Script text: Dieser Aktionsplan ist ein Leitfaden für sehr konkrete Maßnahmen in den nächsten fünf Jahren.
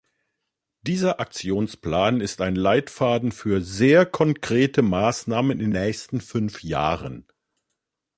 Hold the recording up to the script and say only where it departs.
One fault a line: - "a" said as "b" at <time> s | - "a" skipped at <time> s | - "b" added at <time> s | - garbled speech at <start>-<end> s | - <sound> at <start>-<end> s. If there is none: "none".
- "den" skipped at 5.7 s